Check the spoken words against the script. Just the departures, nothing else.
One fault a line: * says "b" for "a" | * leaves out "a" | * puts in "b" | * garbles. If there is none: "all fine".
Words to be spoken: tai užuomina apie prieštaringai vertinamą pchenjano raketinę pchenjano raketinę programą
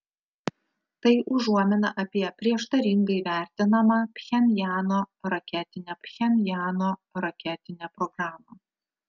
all fine